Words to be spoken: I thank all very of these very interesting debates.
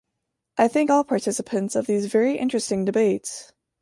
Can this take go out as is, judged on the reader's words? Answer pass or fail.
fail